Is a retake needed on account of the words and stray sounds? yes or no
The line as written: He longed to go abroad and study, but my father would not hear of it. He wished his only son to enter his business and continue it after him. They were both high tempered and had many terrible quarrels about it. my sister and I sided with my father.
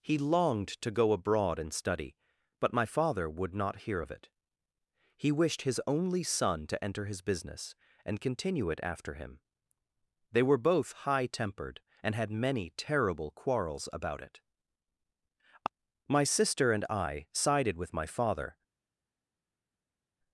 no